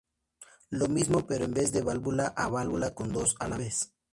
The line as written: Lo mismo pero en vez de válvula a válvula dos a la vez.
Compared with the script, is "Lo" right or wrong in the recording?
right